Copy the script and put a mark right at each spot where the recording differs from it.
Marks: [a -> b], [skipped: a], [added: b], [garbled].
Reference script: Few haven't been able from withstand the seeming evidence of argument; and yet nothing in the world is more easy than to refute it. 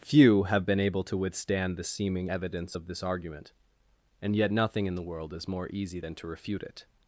Few [haven't -> have] been able [from -> to] withstand the seeming evidence of [added: this] argument; and yet nothing in the world is more easy than to refute it.